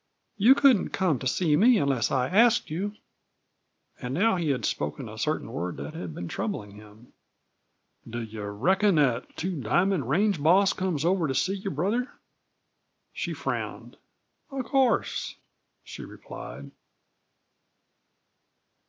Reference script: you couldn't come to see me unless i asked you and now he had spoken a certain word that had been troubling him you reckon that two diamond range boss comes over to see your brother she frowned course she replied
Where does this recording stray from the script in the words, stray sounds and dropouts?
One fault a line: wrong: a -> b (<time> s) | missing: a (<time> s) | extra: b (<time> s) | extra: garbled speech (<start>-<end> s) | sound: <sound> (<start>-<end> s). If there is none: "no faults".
extra: do (8.1 s)
extra: of (14.5 s)